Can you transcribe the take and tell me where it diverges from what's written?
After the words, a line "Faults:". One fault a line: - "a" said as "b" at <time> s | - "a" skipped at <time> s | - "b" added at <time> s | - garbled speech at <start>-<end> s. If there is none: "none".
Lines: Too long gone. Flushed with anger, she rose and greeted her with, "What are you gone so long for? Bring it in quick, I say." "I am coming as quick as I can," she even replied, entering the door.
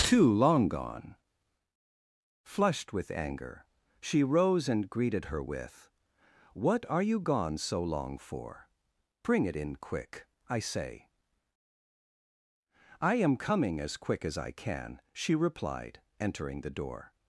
Too long gone. Flushed with anger, she rose and greeted her with, "What are you gone so long for? Bring it in quick, I say." "I am coming as quick as I can," she replied, entering the door.
Faults:
- "even" skipped at 15.4 s